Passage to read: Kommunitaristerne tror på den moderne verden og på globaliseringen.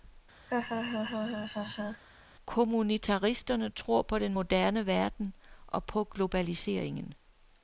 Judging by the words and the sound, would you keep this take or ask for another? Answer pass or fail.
fail